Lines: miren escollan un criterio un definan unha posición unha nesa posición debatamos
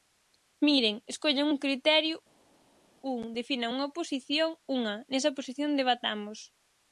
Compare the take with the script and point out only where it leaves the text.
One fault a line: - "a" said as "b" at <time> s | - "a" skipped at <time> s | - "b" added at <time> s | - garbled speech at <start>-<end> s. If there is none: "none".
none